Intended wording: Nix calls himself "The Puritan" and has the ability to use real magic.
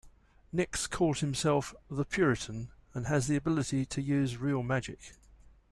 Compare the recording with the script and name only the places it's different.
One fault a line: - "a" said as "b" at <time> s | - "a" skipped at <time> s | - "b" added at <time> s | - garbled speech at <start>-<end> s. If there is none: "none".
none